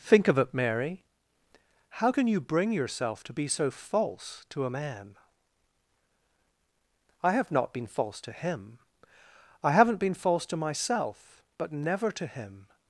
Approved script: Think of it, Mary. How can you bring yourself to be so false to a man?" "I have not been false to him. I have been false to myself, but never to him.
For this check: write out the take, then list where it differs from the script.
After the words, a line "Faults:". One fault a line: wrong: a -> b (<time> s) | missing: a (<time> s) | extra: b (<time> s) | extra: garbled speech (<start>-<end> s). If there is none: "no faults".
Think of it, Mary. How can you bring yourself to be so false to a man?" "I have not been false to him. I haven't been false to myself, but never to him.
Faults:
wrong: have -> haven't (9.7 s)